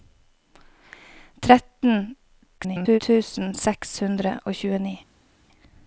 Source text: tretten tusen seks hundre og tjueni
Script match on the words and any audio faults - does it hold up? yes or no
no